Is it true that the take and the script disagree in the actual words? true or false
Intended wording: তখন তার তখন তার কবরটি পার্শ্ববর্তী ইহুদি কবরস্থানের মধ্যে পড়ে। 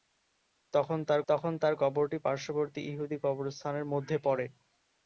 false